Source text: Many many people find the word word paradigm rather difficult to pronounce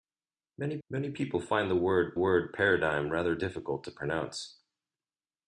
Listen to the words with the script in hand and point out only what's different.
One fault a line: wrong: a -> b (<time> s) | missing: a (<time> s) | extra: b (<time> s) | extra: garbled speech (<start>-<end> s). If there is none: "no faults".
no faults